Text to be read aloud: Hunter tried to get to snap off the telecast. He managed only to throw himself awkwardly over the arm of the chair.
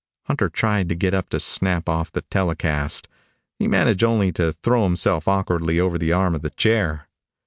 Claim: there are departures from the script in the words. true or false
true